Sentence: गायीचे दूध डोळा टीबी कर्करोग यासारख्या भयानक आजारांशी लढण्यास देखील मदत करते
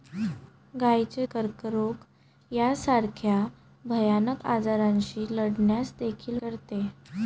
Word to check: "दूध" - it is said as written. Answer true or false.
false